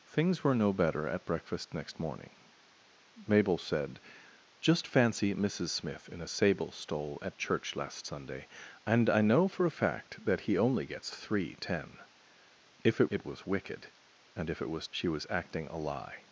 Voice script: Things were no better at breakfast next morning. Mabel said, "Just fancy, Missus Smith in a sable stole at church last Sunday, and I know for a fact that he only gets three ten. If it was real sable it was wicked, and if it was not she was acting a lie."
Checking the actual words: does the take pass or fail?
fail